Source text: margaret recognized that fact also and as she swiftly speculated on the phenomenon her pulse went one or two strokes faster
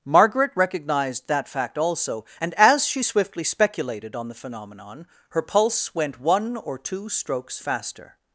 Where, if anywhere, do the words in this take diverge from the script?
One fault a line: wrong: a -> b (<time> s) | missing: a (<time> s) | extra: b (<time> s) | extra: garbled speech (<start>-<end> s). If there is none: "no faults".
no faults